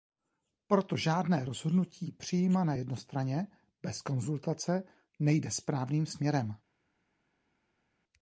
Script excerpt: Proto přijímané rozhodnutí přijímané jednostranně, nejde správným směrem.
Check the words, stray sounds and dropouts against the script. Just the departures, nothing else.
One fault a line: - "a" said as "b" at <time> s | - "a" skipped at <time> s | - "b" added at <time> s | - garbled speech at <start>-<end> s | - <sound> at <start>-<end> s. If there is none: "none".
- "přijímané" said as "žádné" at 1.0 s
- "bez konzultace" added at 3.8 s